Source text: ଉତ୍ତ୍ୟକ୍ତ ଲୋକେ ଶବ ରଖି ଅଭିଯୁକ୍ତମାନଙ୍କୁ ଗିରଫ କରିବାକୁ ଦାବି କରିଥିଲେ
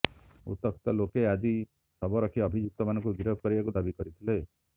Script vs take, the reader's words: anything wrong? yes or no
yes